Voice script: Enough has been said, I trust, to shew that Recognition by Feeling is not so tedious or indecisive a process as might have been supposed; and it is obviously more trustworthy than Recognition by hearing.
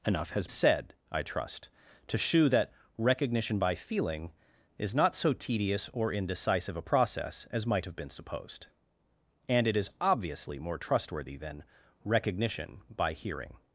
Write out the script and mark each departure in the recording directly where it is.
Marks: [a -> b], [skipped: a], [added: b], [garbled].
Enough has [skipped: been] said, I trust, to shew that Recognition by Feeling is not so tedious or indecisive a process as might have been supposed; and it is obviously more trustworthy than Recognition by hearing.